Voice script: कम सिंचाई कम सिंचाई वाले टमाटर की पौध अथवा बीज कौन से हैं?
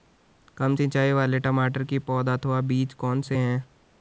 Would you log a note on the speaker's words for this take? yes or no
yes